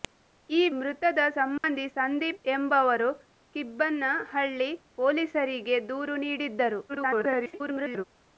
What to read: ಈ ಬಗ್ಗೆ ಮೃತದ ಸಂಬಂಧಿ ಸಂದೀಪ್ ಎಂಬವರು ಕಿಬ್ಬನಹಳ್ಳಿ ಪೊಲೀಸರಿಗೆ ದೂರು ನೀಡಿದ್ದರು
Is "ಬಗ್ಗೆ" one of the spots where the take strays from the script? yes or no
yes